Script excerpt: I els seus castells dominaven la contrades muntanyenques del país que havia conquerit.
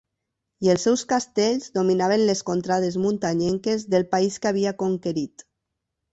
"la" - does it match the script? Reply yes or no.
no